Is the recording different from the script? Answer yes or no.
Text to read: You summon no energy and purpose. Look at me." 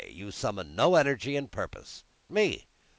yes